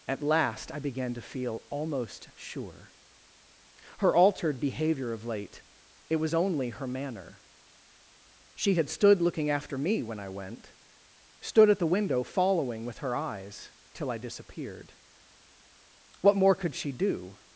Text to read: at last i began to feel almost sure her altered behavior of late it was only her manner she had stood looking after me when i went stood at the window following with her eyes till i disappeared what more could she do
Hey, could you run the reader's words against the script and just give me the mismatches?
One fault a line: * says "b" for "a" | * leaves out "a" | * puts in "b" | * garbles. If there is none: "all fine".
all fine